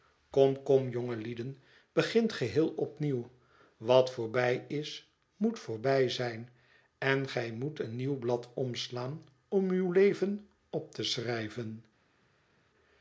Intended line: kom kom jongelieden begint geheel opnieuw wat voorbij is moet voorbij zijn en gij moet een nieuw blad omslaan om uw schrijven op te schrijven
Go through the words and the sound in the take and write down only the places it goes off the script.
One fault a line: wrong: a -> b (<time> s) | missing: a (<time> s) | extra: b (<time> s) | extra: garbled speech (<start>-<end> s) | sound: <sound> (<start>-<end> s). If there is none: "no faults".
wrong: schrijven -> leven (9.9 s)